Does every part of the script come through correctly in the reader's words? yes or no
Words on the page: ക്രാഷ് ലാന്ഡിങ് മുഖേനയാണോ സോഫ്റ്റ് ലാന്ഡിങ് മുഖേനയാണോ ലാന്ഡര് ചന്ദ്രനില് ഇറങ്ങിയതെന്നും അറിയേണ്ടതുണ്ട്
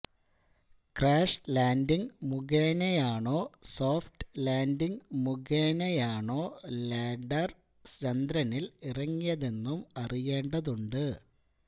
yes